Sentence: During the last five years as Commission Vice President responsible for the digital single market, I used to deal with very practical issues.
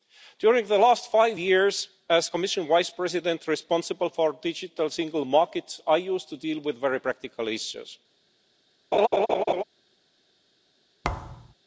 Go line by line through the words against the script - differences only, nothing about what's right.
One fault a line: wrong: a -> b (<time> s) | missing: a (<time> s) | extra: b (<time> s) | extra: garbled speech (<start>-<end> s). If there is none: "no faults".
no faults